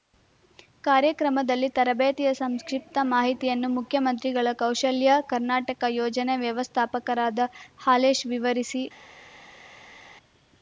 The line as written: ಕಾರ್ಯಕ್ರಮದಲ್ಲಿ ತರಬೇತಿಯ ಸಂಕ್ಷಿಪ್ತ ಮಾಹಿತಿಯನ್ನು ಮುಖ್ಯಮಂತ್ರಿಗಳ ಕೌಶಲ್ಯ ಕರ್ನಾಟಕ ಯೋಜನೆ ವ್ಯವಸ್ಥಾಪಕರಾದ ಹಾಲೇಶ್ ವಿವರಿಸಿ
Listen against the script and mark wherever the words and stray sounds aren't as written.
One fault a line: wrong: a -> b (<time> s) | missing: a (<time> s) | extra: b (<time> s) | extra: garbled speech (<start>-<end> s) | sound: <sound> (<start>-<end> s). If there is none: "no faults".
no faults